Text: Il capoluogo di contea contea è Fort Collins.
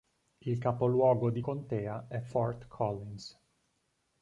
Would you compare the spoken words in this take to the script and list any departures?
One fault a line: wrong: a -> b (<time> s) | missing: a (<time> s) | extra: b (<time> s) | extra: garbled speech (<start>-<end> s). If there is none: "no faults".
missing: contea (2.1 s)